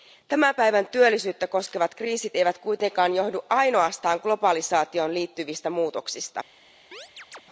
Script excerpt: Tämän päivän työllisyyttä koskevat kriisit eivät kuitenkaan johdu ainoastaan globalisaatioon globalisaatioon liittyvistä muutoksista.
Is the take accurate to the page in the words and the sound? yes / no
no